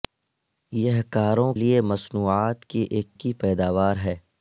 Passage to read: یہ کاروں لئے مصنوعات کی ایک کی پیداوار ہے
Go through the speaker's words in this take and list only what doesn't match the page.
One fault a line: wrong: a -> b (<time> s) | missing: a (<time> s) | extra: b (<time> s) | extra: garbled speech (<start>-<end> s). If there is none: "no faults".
no faults